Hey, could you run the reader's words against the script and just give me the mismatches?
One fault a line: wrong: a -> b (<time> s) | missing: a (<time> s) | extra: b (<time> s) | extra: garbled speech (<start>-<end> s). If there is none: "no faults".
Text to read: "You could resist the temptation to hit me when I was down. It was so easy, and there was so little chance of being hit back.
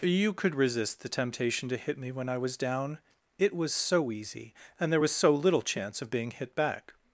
no faults